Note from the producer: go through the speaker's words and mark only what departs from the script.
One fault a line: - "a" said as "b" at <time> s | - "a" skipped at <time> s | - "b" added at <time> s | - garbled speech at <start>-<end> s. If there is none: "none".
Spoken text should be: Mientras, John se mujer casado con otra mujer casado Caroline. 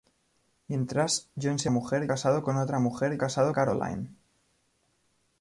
none